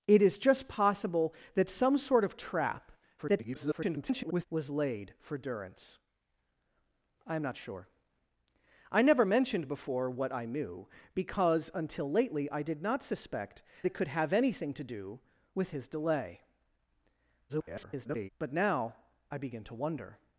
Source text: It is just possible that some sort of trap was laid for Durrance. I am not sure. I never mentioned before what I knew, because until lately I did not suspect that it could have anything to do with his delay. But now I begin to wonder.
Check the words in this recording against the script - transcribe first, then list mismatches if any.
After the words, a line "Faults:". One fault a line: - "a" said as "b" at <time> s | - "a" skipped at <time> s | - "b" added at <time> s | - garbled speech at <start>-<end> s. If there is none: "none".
It is just possible that some sort of trap [garbled] was laid for Durrance. I am not sure. I never mentioned before what I knew, because until lately I did not suspect it could have anything to do with his delay. [garbled] But now I begin to wonder.
Faults:
- garbled speech at 3.2-4.5 s
- "that" skipped at 13.6 s
- garbled speech at 17.5-18.3 s